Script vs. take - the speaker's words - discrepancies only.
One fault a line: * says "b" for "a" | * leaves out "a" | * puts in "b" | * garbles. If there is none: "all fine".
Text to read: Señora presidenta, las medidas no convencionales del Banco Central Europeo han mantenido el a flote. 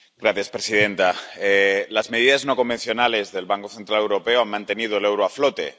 * puts in "euro"